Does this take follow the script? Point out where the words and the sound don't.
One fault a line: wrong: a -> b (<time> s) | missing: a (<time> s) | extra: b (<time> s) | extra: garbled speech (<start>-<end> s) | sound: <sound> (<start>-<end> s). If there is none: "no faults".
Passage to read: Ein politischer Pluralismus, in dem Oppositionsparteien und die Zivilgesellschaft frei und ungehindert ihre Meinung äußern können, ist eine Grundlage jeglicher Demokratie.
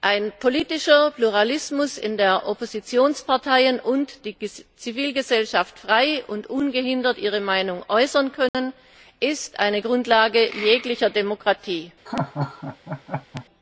sound: dropout (8.5-8.5 s)
sound: laugh (12.1-13.5 s)